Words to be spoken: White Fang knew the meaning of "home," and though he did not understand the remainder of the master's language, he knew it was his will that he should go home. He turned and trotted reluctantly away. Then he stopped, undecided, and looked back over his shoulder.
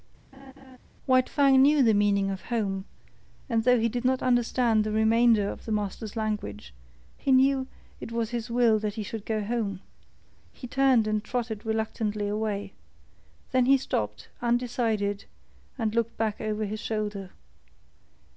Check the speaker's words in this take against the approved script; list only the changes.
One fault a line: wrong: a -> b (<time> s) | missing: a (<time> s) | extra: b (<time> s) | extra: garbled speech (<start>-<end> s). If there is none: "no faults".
no faults